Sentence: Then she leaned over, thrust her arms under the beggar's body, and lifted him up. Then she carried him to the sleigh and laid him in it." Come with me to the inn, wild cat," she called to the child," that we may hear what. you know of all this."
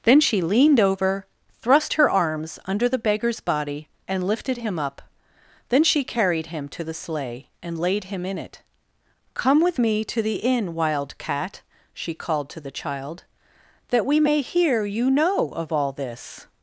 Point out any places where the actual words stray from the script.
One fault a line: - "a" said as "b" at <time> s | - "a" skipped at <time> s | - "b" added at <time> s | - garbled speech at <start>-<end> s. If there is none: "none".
- "what" skipped at 14.8 s